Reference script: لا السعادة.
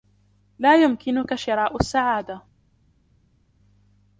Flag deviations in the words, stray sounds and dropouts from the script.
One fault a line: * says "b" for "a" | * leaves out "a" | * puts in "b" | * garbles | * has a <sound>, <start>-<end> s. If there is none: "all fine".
* puts in "يمكنك شراء"